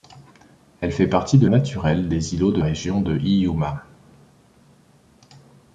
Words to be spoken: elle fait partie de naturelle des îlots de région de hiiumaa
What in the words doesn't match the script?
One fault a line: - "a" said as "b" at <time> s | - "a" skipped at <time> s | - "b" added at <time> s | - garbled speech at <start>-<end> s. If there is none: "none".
none